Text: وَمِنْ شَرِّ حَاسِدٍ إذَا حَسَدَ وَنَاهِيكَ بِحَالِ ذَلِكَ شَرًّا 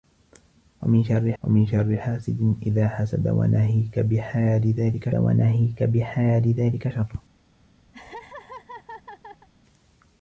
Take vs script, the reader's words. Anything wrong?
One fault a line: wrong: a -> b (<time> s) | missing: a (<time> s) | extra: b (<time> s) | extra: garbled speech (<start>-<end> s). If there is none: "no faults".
extra: وَمِنْ شَرِّ (1.4 s)
extra: وَنَاهِيكَ بِحَالِ ذَلِكَ (5.1 s)